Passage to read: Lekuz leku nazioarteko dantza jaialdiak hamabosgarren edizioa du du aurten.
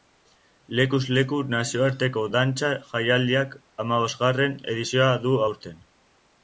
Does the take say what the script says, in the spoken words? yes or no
no